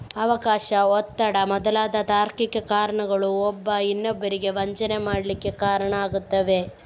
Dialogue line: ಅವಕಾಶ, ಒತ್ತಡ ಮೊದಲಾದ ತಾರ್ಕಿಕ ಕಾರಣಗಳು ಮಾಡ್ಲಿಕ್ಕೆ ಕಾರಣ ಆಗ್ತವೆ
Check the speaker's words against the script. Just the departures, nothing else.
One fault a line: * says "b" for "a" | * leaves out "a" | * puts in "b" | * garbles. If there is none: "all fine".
* puts in "ಒಬ್ಬ ಇನ್ನೊಬ್ಬರಿಗೆ ವಂಚನೆ"